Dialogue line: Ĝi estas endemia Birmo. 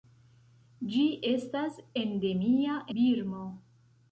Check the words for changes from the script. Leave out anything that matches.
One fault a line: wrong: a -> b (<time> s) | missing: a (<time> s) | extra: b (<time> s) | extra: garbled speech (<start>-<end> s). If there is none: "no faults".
no faults